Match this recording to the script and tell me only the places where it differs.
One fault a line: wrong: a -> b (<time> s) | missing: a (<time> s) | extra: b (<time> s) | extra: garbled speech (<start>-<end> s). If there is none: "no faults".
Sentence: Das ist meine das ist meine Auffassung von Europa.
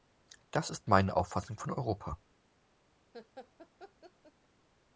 missing: das ist meine (1.2 s)